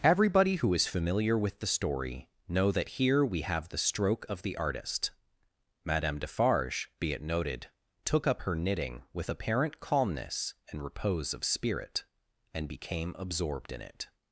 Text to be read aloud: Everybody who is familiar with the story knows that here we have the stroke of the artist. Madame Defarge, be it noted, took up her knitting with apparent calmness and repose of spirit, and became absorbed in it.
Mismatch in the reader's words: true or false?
true